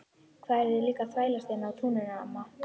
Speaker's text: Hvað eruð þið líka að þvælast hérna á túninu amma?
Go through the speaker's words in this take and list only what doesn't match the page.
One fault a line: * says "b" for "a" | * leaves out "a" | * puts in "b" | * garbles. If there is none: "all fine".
all fine